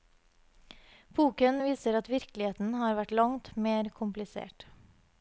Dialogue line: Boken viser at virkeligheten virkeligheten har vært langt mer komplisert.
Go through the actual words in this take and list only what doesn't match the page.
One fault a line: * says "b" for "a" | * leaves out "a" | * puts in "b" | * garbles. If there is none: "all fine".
* leaves out "virkeligheten"